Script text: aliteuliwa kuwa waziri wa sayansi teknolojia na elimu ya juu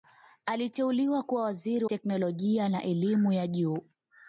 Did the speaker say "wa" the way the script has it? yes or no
no